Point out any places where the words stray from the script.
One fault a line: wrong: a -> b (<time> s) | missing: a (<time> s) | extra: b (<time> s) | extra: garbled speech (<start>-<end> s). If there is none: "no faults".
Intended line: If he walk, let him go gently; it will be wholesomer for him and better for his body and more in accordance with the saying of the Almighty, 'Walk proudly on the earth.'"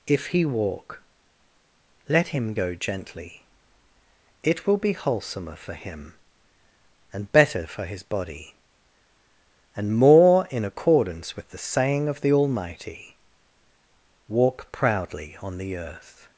no faults